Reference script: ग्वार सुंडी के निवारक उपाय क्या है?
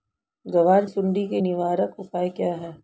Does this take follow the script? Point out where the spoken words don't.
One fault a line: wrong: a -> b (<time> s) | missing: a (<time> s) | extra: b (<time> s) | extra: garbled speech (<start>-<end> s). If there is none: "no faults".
no faults